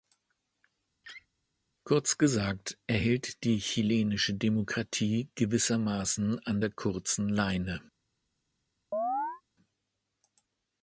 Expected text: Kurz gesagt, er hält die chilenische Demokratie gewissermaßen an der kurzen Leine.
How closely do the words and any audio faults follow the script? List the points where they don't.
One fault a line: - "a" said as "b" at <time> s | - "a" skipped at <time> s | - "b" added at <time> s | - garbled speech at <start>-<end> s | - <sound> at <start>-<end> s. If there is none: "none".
- laugh at 1.0-1.3 s
- chirp at 8.9-9.4 s